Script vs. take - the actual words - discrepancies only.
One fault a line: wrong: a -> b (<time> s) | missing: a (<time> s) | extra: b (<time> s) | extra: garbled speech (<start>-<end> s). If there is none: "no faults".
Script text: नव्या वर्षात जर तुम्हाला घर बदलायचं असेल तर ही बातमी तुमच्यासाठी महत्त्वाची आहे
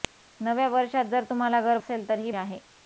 missing: बदलायचं (1.8 s)
missing: बातमी तुमच्यासाठी महत्त्वाची (2.3 s)